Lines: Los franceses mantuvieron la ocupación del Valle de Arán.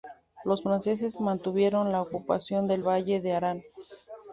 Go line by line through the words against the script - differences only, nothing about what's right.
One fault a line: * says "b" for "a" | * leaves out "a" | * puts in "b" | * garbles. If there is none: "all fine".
all fine